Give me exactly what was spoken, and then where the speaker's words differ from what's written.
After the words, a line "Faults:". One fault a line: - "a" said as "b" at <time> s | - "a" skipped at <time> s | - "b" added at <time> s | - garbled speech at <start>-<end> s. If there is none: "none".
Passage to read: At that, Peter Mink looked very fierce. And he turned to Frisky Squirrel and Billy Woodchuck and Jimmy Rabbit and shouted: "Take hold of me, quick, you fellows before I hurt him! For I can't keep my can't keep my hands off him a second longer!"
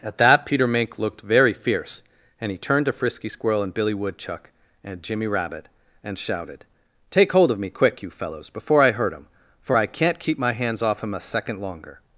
At that, Peter Mink looked very fierce. And he turned to Frisky Squirrel and Billy Woodchuck and Jimmy Rabbit and shouted: "Take hold of me, quick, you fellows before I hurt him! For I can't keep my hands off him a second longer!"
Faults:
- "can't keep my" skipped at 10.5 s